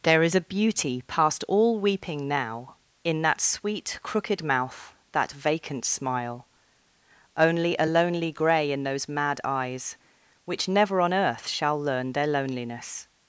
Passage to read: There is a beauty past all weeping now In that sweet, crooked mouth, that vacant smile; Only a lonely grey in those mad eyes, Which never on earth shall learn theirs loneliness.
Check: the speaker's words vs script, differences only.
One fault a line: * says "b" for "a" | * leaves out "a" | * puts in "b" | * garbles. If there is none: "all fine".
* says "their" for "theirs"